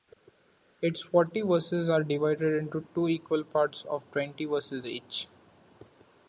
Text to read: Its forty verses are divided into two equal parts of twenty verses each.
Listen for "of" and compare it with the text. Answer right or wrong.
right